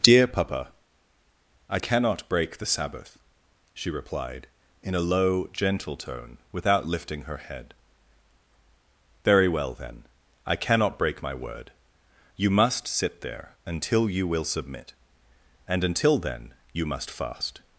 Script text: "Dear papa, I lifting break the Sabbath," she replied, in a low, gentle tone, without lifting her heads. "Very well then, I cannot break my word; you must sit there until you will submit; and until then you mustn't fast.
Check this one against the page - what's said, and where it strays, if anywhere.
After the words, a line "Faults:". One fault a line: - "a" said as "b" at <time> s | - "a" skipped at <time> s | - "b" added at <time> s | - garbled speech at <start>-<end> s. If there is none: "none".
"Dear papa, I cannot break the Sabbath," she replied, in a low, gentle tone, without lifting her head. "Very well then, I cannot break my word; you must sit there until you will submit; and until then you must fast.
Faults:
- "lifting" said as "cannot" at 1.7 s
- "heads" said as "head" at 7.3 s
- "mustn't" said as "must" at 16.8 s